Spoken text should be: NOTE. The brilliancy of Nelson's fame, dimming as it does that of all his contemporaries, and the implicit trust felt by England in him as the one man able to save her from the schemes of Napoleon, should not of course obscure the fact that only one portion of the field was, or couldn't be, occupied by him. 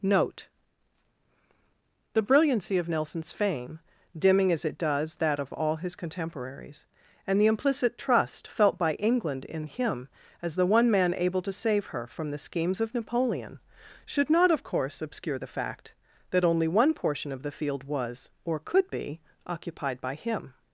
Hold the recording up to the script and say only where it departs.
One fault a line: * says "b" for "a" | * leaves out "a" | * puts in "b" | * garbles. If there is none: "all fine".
* says "could" for "couldn't"